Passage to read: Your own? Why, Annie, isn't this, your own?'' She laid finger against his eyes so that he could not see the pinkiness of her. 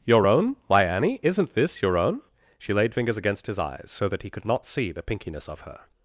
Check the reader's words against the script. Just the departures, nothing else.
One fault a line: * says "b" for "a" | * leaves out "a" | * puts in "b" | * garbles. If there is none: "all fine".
* says "fingers" for "finger"